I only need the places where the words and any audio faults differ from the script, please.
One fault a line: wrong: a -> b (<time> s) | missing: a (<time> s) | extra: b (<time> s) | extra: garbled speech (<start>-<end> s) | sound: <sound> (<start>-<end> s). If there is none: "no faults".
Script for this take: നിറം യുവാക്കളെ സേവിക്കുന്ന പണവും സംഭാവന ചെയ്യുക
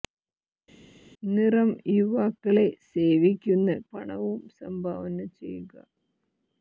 no faults